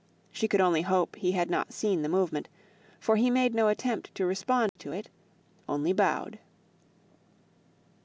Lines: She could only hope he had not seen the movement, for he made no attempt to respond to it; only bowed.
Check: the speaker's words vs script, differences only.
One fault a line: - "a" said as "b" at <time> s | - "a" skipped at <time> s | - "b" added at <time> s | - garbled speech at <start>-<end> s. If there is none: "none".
none